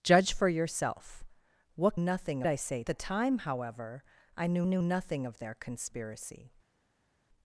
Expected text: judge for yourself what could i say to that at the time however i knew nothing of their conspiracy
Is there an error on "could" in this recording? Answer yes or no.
yes